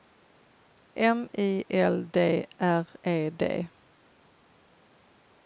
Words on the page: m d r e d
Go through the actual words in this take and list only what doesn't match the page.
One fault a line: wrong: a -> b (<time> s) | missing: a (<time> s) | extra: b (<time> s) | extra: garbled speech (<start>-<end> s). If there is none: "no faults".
extra: i l (1.4 s)